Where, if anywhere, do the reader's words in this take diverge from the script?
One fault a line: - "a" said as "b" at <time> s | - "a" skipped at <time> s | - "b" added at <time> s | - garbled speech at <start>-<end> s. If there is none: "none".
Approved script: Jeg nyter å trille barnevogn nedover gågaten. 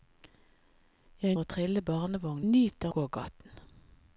- "nyter" skipped at 1.4 s
- "nedover" said as "nyter" at 2.5 s